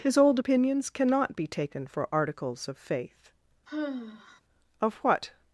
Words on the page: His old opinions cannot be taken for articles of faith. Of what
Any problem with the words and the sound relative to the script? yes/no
yes